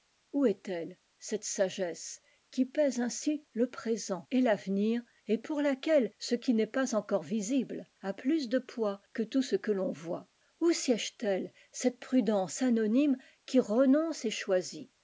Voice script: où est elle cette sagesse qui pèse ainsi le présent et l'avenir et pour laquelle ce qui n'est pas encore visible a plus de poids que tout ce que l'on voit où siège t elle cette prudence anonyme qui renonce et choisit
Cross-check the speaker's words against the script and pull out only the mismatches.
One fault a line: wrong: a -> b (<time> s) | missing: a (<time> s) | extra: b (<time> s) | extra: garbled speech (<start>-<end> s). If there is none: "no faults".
no faults